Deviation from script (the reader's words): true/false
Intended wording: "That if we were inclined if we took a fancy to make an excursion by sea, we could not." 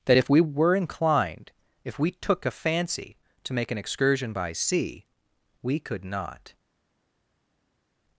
false